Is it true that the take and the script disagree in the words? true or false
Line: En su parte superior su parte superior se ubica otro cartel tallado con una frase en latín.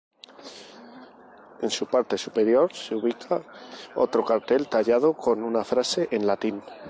true